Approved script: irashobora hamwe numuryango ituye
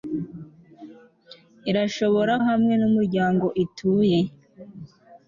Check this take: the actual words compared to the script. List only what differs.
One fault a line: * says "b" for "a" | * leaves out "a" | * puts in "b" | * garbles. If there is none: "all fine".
all fine